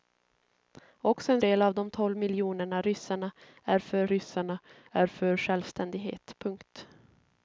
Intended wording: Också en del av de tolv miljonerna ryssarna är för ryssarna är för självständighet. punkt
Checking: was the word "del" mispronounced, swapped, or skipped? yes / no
no